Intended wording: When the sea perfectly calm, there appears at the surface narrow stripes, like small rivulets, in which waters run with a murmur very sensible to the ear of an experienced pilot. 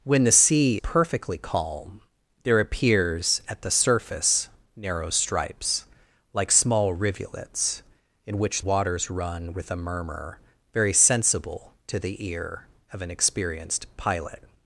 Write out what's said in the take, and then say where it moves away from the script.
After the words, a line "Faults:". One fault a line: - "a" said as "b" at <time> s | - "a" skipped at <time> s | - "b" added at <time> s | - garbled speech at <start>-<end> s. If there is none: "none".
When the sea perfectly calm, there appears at the surface narrow stripes, like small rivulets, in which waters run with a murmur very sensible to the ear of an experienced pilot.
Faults:
none